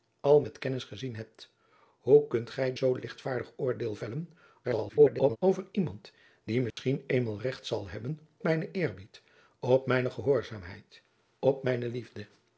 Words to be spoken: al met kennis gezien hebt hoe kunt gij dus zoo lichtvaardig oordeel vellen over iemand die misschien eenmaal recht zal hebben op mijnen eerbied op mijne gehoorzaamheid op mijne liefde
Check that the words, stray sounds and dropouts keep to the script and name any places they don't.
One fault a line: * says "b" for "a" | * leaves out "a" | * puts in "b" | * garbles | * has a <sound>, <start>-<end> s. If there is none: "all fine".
* leaves out "dus"
* garbles
* has a dropout, 6.7-6.8 s
* leaves out "op"